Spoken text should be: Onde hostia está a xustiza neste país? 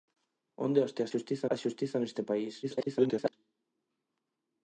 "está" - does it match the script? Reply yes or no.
no